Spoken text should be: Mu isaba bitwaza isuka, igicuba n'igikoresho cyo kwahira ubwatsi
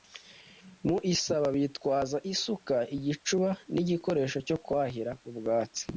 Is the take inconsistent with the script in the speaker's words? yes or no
no